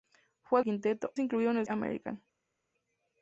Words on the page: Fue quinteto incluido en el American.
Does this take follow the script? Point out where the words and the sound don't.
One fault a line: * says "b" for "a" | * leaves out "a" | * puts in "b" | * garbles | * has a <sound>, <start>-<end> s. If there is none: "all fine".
all fine